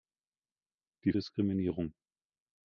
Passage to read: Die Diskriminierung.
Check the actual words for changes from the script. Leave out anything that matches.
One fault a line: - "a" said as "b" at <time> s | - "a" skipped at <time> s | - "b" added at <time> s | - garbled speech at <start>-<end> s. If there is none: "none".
none